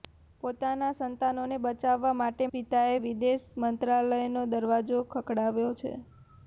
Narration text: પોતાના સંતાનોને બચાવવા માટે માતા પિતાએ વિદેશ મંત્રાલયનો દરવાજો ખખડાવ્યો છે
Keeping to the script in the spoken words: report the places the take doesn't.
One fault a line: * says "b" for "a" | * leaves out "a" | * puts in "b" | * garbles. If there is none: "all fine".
* leaves out "માતા"